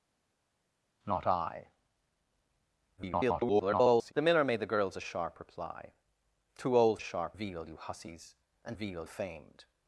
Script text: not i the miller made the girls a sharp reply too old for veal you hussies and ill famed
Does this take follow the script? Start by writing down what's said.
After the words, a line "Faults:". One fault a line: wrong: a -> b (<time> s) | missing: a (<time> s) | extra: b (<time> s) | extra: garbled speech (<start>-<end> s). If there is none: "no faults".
not i [garbled] the miller made the girls a sharp reply too old sharp veal you hussies and veal famed
Faults:
extra: garbled speech (3.0-4.1 s)
wrong: for -> sharp (7.0 s)
wrong: ill -> veal (8.7 s)